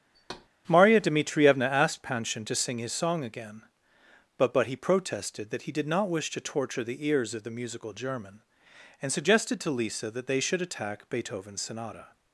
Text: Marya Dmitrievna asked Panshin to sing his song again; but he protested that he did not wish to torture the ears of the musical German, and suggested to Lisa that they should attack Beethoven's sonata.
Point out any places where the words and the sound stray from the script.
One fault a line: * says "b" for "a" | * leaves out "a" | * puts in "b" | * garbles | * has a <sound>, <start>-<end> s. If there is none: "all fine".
* has a thud, 0.1-0.5 s
* puts in "but"